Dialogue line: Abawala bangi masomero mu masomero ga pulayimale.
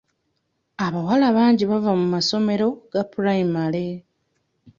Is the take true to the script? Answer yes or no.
no